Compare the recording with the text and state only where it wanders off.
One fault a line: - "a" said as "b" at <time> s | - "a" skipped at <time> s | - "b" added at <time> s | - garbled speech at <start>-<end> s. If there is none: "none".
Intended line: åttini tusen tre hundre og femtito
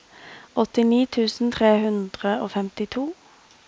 none